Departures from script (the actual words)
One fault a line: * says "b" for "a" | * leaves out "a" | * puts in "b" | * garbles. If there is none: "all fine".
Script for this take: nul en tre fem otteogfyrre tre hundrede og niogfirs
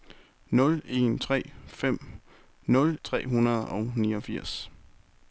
* says "nul" for "otteogfyrre"